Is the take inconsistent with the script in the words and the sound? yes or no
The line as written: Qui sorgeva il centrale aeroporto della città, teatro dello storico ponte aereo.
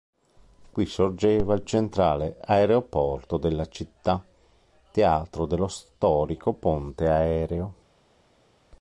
no